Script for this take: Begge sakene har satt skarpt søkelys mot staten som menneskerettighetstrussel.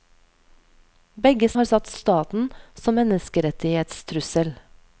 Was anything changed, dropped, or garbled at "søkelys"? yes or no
yes